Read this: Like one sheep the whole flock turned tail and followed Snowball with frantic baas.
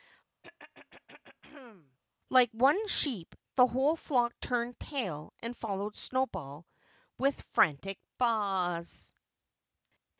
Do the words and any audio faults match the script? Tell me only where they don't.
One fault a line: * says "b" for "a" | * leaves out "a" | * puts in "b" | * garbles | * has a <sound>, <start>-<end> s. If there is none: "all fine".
* has a throat clearing, 0.4-2.0 s